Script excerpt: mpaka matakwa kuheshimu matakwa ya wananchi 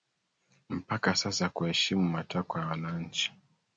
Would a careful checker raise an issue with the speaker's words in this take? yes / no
yes